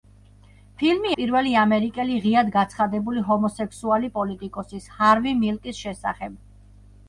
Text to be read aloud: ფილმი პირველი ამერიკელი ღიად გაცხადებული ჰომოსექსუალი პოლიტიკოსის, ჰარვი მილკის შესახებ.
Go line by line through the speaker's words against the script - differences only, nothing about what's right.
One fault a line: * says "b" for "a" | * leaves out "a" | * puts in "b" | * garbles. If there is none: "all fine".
all fine